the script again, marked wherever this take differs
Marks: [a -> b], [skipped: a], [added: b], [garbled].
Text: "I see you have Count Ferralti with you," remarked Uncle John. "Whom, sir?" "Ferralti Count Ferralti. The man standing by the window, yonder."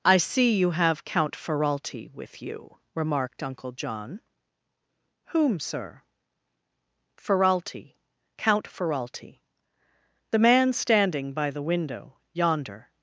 "I see you have Count Ferralti with you," remarked Uncle John. "Whom, sir?" "Ferralti Count Ferralti. The man standing by the window, yonder."